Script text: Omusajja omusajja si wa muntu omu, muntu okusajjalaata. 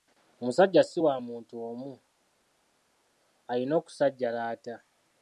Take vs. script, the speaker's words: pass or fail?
fail